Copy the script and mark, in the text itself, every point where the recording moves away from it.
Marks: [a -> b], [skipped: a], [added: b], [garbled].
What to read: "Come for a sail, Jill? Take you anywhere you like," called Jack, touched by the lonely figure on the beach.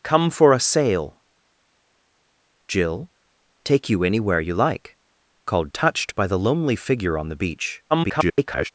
"Come for a sail, Jill? Take you anywhere you like," called [skipped: Jack,] touched by the lonely figure on the beach. [garbled]